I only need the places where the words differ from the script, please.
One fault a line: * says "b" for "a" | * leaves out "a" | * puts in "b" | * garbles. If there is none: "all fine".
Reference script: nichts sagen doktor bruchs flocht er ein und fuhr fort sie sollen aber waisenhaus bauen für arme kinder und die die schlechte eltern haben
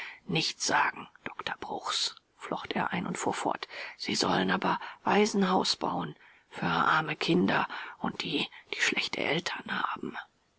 all fine